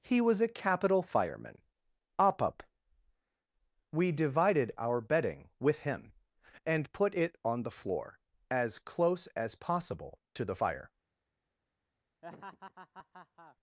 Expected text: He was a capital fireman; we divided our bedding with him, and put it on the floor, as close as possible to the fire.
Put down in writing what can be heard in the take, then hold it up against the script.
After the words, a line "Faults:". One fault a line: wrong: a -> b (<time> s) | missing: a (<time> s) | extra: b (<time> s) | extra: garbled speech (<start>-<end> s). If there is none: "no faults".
He was a capital fireman; op up we divided our bedding with him, and put it on the floor, as close as possible to the fire.
Faults:
extra: op up (2.2 s)